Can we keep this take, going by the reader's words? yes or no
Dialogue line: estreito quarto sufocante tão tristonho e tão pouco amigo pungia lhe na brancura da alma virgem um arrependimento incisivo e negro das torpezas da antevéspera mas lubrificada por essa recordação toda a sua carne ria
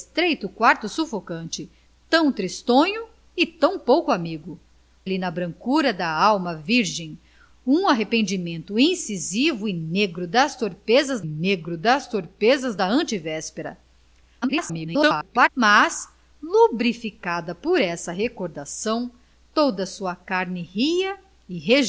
no